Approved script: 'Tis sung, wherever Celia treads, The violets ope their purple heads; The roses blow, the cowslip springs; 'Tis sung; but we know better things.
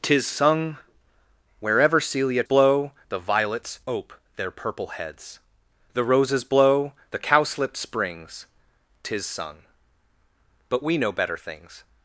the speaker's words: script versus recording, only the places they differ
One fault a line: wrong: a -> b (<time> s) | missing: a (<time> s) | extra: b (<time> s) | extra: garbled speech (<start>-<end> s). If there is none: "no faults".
wrong: treads -> blow (2.4 s)